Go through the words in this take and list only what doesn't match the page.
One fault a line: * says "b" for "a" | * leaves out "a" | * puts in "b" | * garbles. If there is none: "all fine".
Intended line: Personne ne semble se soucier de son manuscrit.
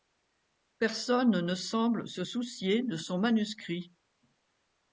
all fine